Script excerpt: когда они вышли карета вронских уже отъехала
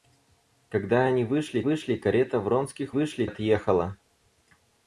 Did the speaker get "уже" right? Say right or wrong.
wrong